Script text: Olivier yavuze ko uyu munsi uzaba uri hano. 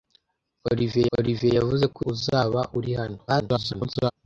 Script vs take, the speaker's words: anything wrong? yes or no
yes